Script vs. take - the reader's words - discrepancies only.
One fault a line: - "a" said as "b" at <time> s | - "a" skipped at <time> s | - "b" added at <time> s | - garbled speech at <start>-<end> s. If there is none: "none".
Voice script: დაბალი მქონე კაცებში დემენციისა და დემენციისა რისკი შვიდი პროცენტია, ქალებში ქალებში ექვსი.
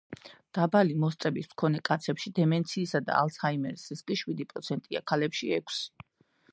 - "მოსწრების" added at 1.0 s
- "დემენციისა" said as "ალცჰაიმერის" at 3.2 s
- "ქალებში" skipped at 5.5 s